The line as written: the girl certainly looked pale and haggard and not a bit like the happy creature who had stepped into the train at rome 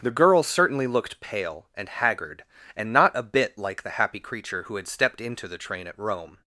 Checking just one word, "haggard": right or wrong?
right